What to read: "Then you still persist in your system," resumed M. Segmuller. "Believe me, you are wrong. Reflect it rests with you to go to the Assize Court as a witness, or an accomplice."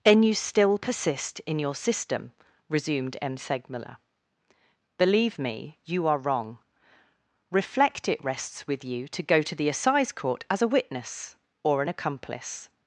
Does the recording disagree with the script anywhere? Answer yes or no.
no